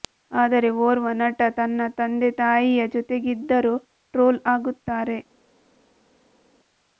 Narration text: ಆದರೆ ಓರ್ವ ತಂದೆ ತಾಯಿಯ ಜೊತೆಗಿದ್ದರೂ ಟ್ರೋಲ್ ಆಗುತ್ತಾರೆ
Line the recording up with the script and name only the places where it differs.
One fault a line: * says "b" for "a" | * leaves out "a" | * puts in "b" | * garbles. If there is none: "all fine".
* puts in "ನಟ ತನ್ನ"